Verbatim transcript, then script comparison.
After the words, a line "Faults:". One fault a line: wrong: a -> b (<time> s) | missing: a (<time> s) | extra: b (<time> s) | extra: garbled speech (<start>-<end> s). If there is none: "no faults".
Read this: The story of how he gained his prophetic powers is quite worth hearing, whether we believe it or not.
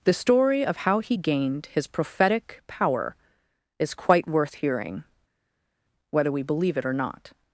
The story of how he gained his prophetic power is quite worth hearing, whether we believe it or not.
Faults:
wrong: powers -> power (2.7 s)